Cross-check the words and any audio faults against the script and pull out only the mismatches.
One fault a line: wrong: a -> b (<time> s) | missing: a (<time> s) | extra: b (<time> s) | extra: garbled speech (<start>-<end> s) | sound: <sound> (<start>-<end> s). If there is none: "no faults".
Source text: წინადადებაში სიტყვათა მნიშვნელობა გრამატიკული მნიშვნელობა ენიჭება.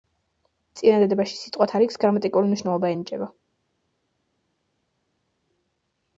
wrong: მნიშვნელობა -> რიგს (1.8 s)